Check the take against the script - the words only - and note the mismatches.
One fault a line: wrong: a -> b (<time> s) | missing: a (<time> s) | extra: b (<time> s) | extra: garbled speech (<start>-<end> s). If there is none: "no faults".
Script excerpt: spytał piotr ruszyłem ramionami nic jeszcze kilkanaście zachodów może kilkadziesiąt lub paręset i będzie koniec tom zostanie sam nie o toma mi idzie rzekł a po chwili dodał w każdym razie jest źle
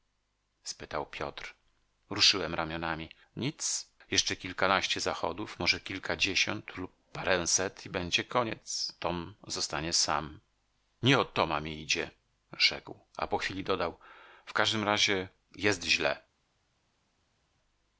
no faults